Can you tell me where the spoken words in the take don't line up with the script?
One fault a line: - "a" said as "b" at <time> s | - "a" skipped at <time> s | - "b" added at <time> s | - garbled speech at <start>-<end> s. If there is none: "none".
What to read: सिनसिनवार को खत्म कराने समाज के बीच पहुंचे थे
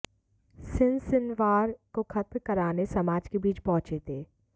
none